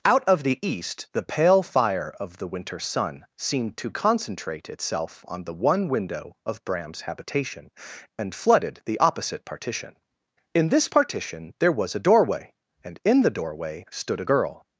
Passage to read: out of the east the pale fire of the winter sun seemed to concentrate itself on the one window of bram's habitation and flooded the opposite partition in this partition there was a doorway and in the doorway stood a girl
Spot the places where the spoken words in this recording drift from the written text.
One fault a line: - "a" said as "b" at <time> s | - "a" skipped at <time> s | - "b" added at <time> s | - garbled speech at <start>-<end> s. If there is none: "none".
none